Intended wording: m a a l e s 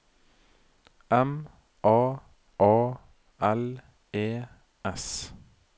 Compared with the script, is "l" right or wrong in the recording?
right